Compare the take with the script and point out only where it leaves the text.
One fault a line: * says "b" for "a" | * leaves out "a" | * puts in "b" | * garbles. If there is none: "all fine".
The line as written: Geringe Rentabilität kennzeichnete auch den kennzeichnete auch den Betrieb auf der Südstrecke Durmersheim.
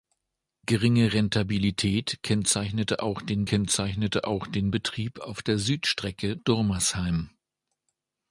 all fine